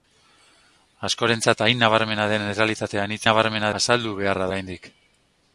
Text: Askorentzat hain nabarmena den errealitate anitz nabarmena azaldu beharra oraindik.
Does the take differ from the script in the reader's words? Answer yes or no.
no